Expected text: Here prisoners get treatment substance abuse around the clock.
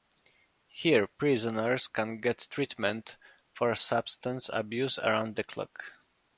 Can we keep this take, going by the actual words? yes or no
no